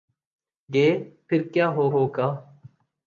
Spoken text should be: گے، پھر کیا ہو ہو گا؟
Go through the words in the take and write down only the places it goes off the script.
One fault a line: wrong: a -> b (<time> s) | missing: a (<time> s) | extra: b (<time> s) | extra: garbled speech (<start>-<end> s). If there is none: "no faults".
no faults